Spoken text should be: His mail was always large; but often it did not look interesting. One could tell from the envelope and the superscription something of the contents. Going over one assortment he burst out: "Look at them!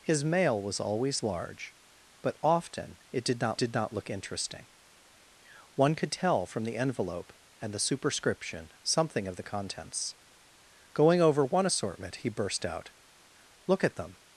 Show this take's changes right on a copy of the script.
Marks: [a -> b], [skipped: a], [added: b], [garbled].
His mail was always large; but often it did not [added: did not] look interesting. One could tell from the envelope and the superscription something of the contents. Going over one assortment he burst out: "Look at them!